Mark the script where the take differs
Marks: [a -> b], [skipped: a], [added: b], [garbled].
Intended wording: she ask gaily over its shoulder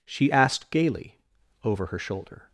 she [ask -> asked] gaily over [its -> her] shoulder